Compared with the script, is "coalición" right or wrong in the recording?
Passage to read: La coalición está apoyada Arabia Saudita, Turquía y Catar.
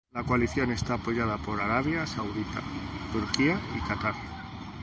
right